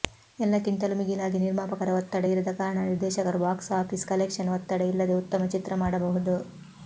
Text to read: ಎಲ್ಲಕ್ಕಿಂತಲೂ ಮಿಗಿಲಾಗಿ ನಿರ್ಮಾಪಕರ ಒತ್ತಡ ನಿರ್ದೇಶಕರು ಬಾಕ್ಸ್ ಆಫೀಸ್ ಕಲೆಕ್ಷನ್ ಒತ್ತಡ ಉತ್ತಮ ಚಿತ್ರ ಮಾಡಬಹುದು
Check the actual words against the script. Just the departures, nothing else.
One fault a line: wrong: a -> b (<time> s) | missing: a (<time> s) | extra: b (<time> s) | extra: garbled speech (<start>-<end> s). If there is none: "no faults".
extra: ಇರದ ಕಾರಣ (2.3 s)
extra: ಇಲ್ಲದೆ (4.9 s)